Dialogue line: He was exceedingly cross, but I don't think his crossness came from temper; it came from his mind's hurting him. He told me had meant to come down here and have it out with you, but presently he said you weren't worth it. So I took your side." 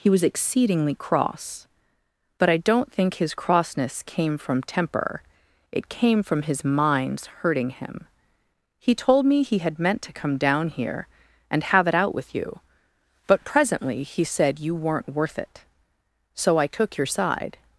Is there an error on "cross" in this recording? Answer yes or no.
no